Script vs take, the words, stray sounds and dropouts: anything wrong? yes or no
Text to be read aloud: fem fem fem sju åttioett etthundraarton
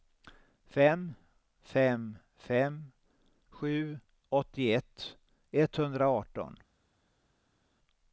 no